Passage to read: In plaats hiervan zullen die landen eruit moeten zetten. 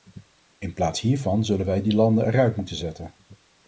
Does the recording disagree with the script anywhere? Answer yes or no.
yes